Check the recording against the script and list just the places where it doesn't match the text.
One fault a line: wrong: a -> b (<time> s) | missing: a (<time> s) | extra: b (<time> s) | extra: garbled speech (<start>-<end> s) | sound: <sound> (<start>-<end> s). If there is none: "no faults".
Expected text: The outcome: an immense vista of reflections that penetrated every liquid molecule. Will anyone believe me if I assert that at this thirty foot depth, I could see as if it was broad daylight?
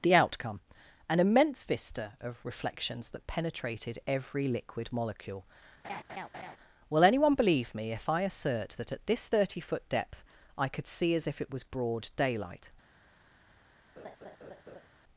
sound: laugh (5.8-6.6 s)
sound: laugh (14.0-14.9 s)